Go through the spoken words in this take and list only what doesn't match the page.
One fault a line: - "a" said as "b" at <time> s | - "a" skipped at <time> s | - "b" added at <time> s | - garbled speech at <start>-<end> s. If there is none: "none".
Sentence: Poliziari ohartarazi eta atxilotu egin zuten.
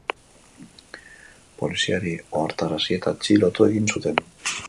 none